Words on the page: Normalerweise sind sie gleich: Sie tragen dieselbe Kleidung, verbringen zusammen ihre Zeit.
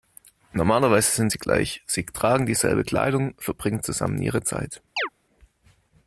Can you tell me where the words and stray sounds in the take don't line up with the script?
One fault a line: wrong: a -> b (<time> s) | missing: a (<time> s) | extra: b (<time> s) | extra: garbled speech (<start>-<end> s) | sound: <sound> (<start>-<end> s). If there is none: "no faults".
sound: chirp (5.0-5.1 s)